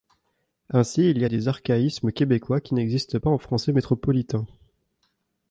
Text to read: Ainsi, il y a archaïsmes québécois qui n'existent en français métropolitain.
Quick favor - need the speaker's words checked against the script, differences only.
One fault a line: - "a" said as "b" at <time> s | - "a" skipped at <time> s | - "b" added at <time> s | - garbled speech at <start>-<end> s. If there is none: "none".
- "des" added at 1.3 s
- "pas" added at 3.1 s